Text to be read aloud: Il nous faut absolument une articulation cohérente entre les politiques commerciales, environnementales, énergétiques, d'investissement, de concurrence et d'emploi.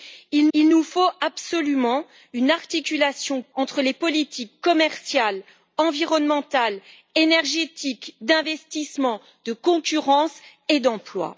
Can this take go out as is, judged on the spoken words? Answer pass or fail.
fail